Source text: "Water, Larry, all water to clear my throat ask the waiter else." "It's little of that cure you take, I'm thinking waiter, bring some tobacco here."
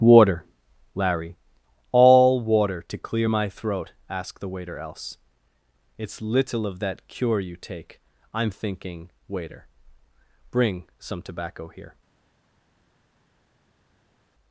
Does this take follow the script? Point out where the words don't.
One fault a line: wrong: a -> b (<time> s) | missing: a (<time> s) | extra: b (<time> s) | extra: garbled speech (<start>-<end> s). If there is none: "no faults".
no faults